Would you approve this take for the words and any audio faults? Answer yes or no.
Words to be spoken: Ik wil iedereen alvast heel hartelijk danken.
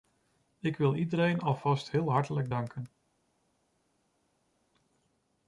yes